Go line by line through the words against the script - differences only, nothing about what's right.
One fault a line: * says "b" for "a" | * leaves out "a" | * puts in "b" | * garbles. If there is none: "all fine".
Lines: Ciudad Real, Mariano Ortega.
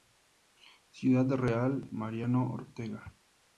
all fine